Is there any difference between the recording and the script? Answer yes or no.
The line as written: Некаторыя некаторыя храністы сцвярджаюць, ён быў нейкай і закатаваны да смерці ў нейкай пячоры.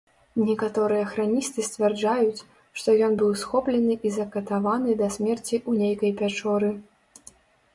yes